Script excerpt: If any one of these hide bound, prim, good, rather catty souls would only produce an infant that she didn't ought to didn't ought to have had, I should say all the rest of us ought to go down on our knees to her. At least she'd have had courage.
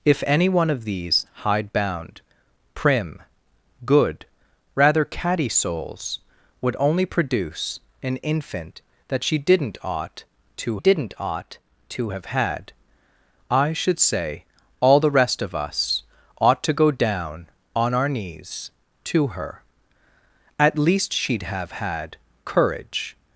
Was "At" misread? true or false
false